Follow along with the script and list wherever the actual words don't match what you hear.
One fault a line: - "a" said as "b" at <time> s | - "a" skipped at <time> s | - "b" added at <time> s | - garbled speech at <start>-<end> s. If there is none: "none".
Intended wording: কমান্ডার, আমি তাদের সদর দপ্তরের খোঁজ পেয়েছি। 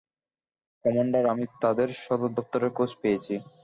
none